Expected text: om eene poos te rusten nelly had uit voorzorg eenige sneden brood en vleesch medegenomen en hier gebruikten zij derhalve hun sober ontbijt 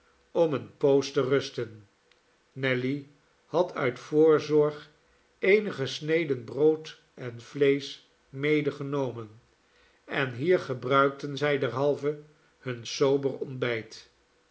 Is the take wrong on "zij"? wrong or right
right